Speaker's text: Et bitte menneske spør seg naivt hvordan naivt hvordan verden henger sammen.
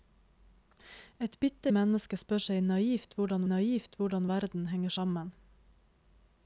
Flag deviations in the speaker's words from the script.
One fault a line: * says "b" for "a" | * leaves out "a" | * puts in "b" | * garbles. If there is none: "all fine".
all fine